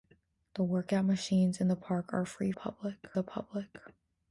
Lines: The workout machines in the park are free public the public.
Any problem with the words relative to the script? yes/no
no